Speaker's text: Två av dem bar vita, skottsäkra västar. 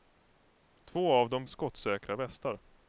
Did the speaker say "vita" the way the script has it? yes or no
no